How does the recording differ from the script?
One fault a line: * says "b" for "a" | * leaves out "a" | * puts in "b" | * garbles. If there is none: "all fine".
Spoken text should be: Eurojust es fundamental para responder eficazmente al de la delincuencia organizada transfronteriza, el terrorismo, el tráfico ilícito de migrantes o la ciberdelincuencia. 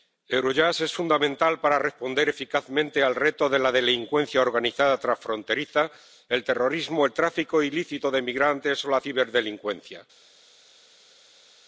* puts in "reto"